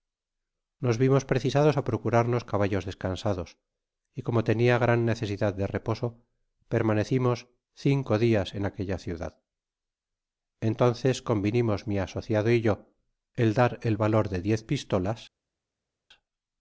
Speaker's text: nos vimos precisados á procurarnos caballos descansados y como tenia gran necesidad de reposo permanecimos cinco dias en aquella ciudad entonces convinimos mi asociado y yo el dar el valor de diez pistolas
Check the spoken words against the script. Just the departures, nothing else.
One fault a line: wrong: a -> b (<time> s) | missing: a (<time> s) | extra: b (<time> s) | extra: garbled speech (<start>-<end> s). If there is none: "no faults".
no faults